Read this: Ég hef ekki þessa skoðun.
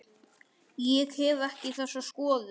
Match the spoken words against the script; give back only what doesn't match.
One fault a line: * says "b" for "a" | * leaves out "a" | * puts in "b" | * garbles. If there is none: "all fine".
all fine